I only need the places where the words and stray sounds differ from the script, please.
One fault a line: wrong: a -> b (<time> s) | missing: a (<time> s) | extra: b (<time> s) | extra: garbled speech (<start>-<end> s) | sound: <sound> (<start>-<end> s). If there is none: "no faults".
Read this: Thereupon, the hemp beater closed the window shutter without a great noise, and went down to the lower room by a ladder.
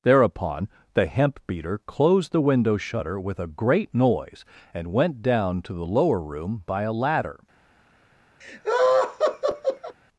wrong: without -> with (3.2 s)
sound: laugh (8.4-10.0 s)